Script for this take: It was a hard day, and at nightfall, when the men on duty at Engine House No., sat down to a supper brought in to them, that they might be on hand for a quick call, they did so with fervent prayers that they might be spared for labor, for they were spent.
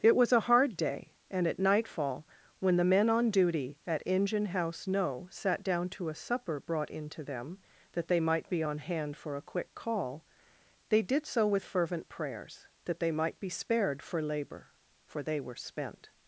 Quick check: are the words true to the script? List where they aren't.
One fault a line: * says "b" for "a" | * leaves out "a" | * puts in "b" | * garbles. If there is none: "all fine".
all fine